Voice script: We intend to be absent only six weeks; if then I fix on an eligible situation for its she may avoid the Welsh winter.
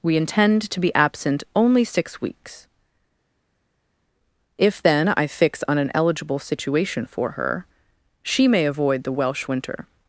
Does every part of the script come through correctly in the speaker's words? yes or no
no